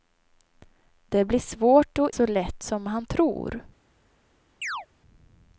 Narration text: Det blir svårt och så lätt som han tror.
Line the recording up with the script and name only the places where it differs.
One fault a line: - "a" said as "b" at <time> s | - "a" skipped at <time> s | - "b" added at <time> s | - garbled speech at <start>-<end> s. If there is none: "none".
none